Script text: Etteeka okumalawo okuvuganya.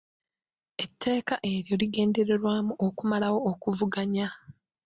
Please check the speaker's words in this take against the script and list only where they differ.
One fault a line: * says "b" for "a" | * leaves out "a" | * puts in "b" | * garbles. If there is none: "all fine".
* puts in "eryo ligendererwamu"